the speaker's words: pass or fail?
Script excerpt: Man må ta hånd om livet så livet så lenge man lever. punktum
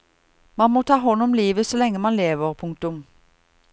fail